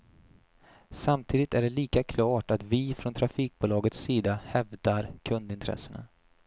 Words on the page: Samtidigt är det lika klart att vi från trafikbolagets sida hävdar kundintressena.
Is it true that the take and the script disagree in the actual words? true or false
false